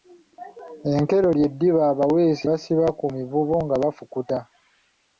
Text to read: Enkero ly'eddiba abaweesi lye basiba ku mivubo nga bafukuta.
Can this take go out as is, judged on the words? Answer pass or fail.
fail